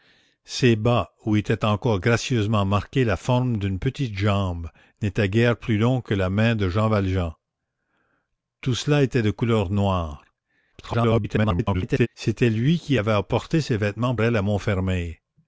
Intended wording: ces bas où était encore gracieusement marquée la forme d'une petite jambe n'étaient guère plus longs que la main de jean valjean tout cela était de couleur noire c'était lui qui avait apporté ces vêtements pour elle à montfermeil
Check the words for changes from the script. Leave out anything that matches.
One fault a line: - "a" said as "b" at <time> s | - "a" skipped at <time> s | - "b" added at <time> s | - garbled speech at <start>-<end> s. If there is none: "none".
- garbled speech at 10.7-12.1 s
- "pour" skipped at 14.1 s